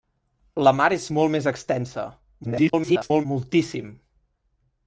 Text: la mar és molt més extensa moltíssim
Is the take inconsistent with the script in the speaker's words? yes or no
yes